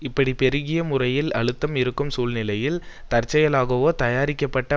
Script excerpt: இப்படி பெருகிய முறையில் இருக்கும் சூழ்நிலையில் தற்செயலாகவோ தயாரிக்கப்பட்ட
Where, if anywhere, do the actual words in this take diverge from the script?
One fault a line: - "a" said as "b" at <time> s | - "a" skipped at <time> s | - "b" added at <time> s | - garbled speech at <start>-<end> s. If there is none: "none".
- "அழுத்தம்" added at 1.3 s